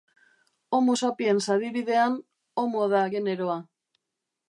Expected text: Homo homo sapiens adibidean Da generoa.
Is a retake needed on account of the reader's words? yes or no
yes